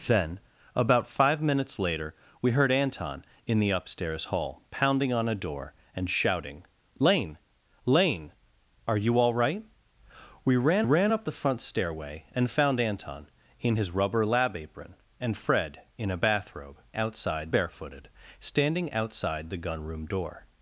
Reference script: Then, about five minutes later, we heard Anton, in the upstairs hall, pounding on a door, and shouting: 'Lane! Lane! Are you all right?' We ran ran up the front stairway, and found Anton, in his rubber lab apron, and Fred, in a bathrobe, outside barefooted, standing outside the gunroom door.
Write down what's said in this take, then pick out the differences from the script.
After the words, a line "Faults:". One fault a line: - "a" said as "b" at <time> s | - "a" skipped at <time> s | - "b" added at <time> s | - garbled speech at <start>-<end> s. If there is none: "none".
Then, about five minutes later, we heard Anton, in the upstairs hall, pounding on a door, and shouting: 'Lane! Lane! Are you all right?' We ran ran up the front stairway, and found Anton, in his rubber lab apron, and Fred, in a bathrobe, outside barefooted, standing outside the gunroom door.
Faults:
none